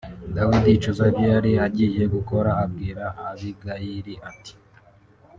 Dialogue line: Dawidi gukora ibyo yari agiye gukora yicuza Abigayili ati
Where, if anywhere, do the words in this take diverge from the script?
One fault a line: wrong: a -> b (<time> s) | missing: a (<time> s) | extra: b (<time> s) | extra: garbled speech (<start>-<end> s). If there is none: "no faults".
wrong: gukora -> yicuza (0.7 s)
wrong: yicuza -> abwira (2.6 s)